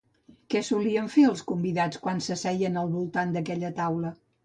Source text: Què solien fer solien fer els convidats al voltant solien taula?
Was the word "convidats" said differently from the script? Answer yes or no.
yes